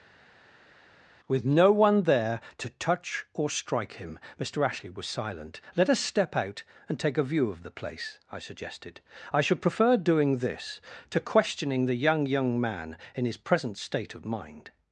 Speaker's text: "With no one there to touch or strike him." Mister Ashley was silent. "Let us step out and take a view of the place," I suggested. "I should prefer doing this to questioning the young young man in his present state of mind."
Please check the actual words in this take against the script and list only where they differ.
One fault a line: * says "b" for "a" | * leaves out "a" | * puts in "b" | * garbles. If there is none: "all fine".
all fine